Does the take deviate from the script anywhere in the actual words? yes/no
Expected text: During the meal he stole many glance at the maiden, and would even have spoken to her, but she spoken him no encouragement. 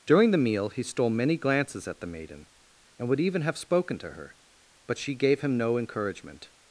yes